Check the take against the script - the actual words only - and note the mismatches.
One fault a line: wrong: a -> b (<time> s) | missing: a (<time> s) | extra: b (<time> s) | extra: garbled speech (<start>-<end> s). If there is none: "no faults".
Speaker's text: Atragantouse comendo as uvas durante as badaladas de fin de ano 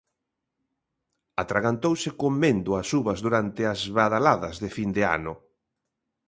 no faults